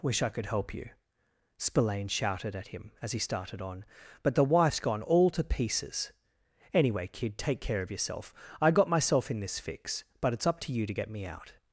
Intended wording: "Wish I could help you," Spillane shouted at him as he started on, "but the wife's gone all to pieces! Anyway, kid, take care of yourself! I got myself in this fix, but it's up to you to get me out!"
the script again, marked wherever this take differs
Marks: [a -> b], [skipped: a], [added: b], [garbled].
"Wish I could help you," Spillane shouted at him as he started on, "but the wife's gone all to pieces! Anyway, kid, take care of yourself! I got myself in this fix, but it's up to you to get me out!"